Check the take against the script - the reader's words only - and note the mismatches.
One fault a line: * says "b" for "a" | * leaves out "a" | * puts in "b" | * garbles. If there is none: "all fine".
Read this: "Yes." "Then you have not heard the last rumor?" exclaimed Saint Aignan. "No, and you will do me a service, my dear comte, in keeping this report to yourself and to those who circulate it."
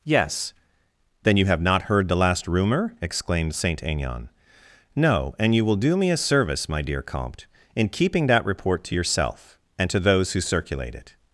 * says "that" for "this"